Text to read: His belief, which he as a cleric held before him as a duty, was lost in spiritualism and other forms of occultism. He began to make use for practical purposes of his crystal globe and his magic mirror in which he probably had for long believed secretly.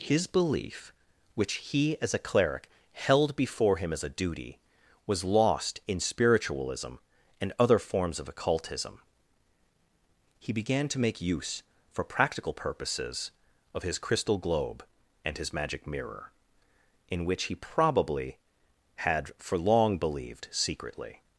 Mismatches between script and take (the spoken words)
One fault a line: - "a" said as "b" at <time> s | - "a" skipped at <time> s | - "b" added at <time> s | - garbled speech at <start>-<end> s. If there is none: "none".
none